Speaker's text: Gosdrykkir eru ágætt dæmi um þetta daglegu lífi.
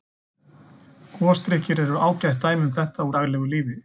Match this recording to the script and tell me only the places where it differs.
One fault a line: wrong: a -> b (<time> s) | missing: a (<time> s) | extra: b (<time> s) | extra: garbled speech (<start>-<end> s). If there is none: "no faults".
no faults